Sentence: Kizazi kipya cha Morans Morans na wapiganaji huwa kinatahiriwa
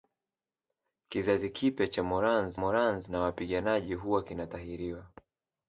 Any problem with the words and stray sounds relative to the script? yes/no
no